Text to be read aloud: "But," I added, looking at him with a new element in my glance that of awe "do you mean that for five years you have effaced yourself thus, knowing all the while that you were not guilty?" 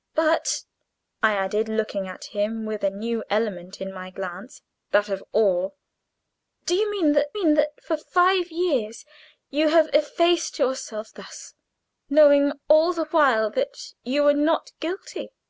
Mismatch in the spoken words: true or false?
true